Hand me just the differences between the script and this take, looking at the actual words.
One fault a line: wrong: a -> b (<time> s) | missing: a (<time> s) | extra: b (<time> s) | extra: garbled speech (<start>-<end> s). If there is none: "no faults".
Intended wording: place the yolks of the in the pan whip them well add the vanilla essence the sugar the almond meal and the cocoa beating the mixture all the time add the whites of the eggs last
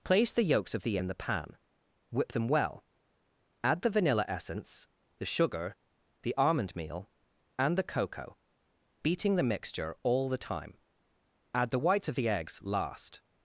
no faults